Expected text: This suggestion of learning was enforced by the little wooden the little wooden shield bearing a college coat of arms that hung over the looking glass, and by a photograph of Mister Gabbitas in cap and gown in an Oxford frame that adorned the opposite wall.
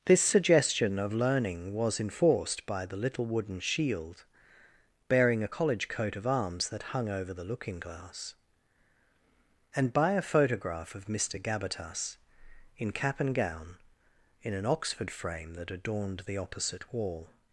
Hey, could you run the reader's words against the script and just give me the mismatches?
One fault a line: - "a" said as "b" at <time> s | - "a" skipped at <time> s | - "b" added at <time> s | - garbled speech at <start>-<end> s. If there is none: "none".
- "the little wooden" skipped at 3.6 s